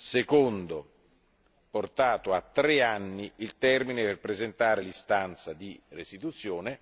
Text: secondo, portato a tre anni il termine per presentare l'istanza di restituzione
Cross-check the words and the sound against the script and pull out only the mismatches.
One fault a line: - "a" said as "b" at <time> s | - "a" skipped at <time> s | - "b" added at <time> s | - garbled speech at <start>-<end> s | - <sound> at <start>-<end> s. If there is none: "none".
none